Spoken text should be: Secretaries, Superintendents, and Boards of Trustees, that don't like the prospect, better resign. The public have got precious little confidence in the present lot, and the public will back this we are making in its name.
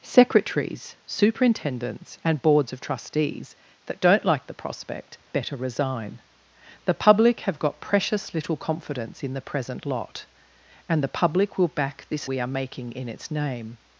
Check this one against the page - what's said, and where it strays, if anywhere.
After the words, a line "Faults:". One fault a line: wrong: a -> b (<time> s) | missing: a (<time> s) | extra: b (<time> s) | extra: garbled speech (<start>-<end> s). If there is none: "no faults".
Secretaries, Superintendents, and Boards of Trustees, that don't like the prospect, better resign. The public have got precious little confidence in the present lot, and the public will back this we are making in its name.
Faults:
no faults